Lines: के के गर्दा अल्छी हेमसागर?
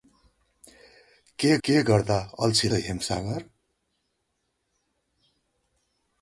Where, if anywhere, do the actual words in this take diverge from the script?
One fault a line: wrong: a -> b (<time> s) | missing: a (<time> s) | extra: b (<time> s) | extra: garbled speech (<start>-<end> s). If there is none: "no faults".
no faults